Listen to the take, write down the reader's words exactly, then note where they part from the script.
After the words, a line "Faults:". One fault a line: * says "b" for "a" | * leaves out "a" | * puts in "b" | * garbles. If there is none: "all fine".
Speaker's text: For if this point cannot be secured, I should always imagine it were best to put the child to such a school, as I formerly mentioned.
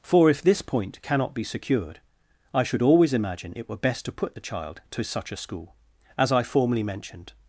For if this point cannot be secured, I should always imagine it were best to put the child to such a school, as I formerly mentioned.
Faults:
all fine